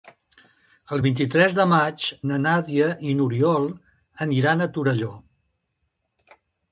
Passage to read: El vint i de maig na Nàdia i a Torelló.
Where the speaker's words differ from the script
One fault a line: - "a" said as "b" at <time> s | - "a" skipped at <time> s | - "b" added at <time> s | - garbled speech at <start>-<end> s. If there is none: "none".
- "tres" added at 1.3 s
- "n'Oriol aniran" added at 3.2 s